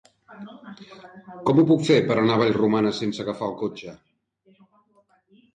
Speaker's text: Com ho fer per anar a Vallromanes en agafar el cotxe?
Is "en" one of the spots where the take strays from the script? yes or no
yes